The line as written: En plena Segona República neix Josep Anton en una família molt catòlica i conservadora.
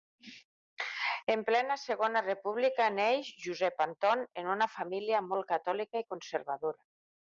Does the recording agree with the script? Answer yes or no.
yes